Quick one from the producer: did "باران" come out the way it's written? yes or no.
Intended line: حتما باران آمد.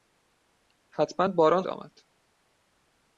yes